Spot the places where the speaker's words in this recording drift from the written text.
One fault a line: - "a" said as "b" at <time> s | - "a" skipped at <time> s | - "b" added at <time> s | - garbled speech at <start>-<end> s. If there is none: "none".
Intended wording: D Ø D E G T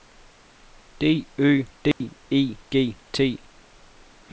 none